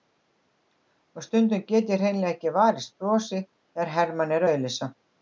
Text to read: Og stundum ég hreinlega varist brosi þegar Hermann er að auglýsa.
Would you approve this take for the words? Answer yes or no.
no